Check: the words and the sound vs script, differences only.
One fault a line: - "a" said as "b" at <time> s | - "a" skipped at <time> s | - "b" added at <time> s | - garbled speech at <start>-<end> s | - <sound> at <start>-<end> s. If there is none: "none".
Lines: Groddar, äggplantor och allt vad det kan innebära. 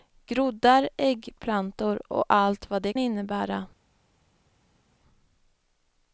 - "kan" skipped at 2.9 s